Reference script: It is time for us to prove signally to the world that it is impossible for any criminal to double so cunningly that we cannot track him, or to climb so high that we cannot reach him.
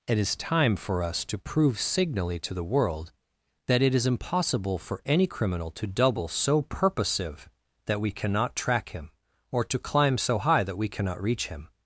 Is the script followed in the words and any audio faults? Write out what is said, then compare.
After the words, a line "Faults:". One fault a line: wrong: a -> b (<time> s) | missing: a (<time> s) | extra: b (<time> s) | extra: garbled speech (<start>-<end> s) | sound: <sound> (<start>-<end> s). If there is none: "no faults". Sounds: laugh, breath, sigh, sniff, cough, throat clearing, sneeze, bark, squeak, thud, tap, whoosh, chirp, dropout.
It is time for us to prove signally to the world that it is impossible for any criminal to double so purposive that we cannot track him, or to climb so high that we cannot reach him.
Faults:
wrong: cunningly -> purposive (6.6 s)